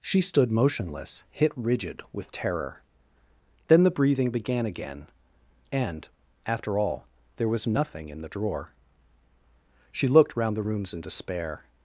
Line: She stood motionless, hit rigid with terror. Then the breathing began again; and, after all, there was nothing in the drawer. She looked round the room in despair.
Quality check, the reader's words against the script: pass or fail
fail